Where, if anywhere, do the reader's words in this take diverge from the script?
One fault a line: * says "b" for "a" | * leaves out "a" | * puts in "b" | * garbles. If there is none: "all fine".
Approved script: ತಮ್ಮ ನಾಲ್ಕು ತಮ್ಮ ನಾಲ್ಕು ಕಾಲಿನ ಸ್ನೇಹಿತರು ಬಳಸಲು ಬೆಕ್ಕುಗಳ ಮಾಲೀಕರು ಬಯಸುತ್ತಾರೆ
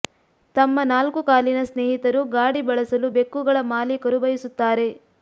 * leaves out "ತಮ್ಮ ನಾಲ್ಕು"
* puts in "ಗಾಡಿ"